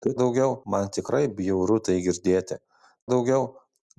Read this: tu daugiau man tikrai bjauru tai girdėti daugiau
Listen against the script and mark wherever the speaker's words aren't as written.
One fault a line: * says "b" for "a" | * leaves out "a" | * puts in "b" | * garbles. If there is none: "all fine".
all fine